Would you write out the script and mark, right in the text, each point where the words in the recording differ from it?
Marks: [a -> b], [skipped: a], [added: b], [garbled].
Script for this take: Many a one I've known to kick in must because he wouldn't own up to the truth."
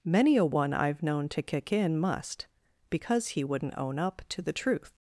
Many a one I've known to kick in must because he wouldn't own up to the truth."